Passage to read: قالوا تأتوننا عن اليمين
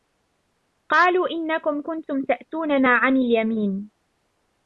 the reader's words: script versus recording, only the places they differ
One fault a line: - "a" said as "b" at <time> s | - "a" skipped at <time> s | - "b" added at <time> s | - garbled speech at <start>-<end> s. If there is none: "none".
- "إنكم كنتم" added at 1.3 s